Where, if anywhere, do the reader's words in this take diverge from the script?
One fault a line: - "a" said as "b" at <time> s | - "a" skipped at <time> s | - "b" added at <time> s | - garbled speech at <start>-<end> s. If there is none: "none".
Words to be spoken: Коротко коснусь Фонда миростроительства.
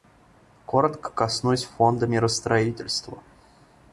none